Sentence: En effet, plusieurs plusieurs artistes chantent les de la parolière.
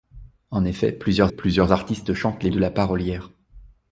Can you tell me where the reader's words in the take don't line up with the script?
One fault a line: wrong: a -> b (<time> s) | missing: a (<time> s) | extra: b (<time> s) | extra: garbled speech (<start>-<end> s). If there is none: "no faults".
no faults